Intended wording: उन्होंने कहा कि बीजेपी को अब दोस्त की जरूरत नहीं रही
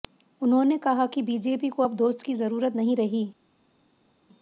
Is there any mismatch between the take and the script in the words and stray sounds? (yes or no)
no